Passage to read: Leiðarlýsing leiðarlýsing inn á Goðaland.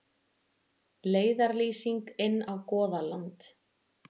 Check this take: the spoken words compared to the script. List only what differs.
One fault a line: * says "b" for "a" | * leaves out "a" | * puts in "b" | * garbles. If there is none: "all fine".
* leaves out "leiðarlýsing"